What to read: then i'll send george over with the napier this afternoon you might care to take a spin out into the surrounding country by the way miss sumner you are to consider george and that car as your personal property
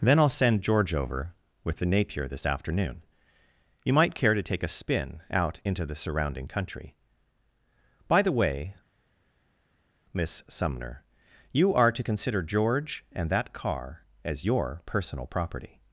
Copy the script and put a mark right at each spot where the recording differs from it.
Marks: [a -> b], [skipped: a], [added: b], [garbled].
then i'll send george over with the napier this afternoon you might care to take a spin out into the surrounding country by the way miss sumner you are to consider george and that car as your personal property